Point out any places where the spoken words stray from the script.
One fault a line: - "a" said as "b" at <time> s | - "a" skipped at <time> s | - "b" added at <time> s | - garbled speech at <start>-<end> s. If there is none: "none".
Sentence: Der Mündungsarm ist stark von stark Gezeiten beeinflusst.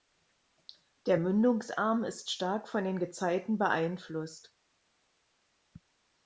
- "stark" said as "den" at 2.8 s